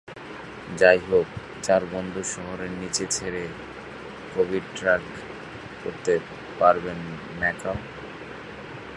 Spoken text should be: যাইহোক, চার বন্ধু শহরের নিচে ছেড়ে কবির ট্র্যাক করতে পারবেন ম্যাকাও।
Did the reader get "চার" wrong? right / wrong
right